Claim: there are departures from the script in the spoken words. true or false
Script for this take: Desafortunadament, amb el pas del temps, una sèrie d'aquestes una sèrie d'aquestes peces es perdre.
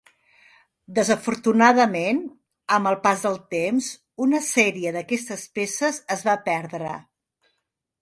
true